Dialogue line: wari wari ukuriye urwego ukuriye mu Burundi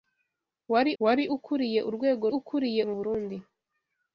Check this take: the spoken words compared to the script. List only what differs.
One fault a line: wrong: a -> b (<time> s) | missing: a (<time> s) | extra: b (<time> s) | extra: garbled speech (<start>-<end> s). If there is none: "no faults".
no faults